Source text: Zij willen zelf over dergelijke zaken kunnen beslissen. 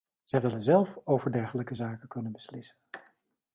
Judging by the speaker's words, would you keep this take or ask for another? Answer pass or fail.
pass